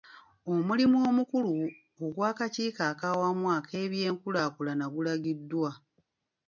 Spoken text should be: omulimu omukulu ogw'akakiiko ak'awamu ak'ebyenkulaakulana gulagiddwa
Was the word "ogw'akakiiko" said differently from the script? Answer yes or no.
no